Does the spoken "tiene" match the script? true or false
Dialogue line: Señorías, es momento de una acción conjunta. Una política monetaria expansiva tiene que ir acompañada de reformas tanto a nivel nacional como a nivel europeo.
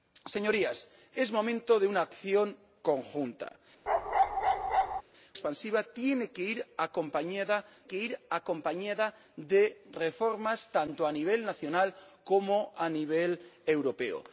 false